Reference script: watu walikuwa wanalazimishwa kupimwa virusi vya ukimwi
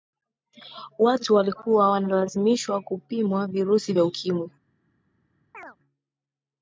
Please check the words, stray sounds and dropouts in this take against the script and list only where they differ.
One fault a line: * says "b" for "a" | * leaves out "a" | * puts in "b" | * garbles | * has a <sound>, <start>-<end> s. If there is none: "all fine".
* has a chirp, 5.5-5.8 s